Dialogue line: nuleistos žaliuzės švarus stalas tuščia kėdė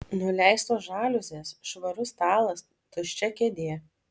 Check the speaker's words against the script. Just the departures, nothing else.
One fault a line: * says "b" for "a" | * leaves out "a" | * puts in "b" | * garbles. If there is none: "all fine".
all fine